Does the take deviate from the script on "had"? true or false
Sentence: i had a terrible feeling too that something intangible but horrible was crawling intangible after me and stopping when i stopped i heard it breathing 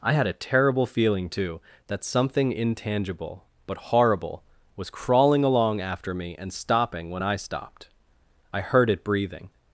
false